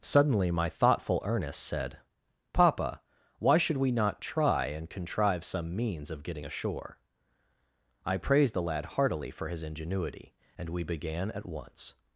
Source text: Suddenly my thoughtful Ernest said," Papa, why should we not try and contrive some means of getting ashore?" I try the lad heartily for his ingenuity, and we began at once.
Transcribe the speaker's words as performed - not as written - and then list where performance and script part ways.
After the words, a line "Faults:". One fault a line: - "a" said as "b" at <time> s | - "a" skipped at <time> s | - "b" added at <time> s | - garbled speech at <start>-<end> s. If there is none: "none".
Suddenly my thoughtful Ernest said," Papa, why should we not try and contrive some means of getting ashore?" I praised the lad heartily for his ingenuity, and we began at once.
Faults:
- "try" said as "praised" at 8.2 s